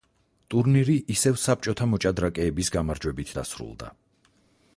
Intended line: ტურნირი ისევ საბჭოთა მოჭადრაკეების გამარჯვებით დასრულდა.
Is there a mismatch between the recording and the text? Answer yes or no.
no